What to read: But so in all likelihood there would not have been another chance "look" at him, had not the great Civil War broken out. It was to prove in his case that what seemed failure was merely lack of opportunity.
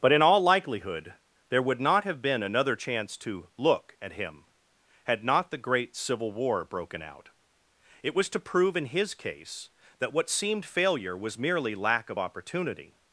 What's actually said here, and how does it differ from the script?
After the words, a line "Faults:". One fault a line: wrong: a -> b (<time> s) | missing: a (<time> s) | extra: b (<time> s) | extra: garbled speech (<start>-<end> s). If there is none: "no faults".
But in all likelihood there would not have been another chance to "look" at him, had not the great Civil War broken out. It was to prove in his case that what seemed failure was merely lack of opportunity.
Faults:
missing: so (0.1 s)
extra: to (3.2 s)